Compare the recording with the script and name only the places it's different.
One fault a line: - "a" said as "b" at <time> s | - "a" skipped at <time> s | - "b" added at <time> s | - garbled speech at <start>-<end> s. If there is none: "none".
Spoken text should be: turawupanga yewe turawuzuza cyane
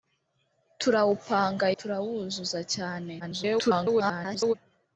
- "yewe" skipped at 1.7 s
- garbled speech at 3.2-4.5 s